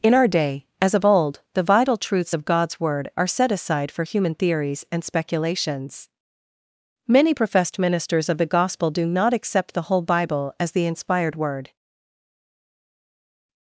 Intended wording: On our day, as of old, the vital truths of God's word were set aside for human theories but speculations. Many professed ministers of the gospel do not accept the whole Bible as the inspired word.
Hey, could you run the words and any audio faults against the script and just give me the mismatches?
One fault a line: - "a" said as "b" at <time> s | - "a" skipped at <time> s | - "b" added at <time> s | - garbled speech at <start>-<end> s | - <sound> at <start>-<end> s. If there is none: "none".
- "On" said as "In" at 0.0 s
- "were" said as "are" at 3.2 s
- "but" said as "and" at 4.9 s